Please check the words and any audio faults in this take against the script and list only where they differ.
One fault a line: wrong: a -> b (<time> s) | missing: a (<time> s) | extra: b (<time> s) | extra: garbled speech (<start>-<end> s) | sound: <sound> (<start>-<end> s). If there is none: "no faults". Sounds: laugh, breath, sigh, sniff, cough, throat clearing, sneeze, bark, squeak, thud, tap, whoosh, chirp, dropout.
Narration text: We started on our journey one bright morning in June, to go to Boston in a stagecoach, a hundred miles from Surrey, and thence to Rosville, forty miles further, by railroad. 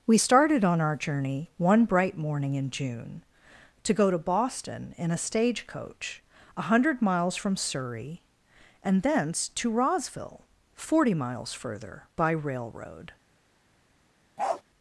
sound: bark (14.4-14.6 s)